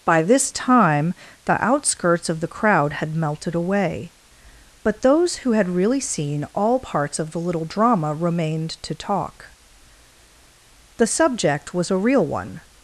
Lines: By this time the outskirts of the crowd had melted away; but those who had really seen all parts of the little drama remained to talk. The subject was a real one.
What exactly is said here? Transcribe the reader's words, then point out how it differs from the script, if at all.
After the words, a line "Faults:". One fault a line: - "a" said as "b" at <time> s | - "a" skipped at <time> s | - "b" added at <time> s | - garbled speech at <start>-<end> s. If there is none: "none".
By this time the outskirts of the crowd had melted away; but those who had really seen all parts of the little drama remained to talk. The subject was a real one.
Faults:
none